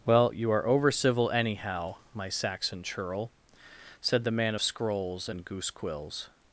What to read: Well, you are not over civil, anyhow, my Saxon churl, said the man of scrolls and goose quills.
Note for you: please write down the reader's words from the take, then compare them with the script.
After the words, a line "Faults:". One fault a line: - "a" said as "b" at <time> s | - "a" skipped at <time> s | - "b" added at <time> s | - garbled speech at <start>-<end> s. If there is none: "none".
Well, you are over civil, anyhow, my Saxon churl, said the man of scrolls and goose quills.
Faults:
- "not" skipped at 0.7 s